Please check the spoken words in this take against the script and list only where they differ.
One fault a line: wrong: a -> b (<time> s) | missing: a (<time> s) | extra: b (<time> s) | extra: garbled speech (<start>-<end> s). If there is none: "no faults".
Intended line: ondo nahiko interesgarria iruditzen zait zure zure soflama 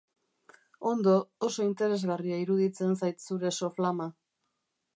wrong: nahiko -> oso (1.5 s)
missing: zure (3.5 s)